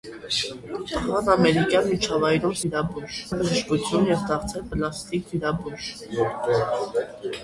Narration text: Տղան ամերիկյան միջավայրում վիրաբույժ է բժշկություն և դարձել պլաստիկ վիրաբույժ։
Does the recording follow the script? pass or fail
pass